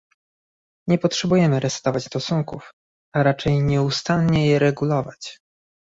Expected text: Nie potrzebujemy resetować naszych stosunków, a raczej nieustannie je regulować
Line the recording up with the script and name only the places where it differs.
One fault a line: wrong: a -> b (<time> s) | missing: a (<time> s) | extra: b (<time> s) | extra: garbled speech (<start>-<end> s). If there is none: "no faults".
missing: naszych (2.1 s)